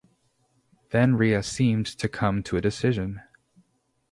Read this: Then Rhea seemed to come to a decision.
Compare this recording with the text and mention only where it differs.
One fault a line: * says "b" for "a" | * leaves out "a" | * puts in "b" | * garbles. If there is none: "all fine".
all fine